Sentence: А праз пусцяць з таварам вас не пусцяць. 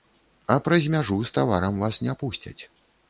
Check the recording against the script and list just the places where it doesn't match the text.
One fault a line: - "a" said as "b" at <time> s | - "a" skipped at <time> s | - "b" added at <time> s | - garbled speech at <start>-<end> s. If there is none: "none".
- "пусцяць" said as "мяжу" at 0.9 s